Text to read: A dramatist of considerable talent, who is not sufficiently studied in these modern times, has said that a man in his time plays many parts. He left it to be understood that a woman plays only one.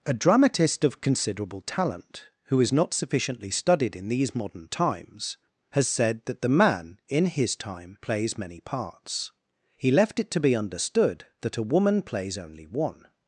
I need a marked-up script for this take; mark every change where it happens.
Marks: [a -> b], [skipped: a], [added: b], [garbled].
A dramatist of considerable talent, who is not sufficiently studied in these modern times, has said that [a -> the] man in his time plays many parts. He left it to be understood that a woman plays only one.